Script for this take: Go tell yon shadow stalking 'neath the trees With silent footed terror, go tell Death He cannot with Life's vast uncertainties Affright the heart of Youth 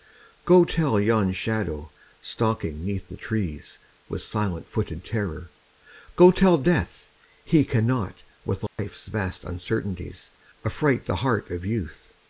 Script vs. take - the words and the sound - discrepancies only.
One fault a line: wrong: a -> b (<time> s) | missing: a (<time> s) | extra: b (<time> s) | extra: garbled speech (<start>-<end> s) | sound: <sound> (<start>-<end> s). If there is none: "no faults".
sound: dropout (8.7-8.8 s)